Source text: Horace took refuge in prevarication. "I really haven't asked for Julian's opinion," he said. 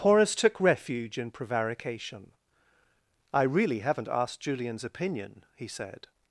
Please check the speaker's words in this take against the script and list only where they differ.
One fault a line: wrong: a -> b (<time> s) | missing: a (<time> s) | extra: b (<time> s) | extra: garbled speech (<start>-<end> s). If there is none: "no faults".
missing: for (4.4 s)